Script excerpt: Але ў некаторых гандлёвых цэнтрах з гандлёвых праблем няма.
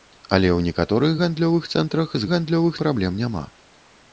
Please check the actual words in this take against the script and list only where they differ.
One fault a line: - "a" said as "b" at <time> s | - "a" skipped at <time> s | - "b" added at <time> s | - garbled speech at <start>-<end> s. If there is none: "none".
none